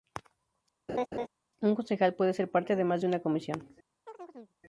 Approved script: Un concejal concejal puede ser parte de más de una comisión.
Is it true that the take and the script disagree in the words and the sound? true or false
true